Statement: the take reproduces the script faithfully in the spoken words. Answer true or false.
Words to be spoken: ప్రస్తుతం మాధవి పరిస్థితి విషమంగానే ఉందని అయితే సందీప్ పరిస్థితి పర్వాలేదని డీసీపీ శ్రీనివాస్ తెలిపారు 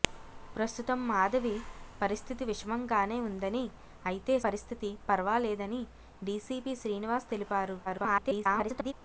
false